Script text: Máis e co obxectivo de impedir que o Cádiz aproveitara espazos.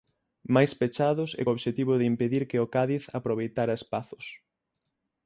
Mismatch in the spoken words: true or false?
true